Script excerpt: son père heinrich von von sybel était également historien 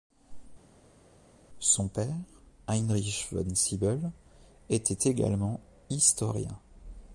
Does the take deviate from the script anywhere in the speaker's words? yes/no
yes